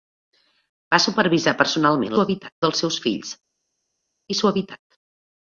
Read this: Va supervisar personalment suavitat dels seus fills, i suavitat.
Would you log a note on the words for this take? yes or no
no